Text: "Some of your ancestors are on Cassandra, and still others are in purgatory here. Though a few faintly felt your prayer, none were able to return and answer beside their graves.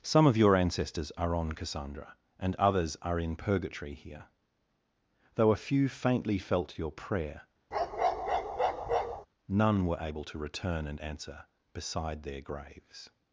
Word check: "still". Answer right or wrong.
wrong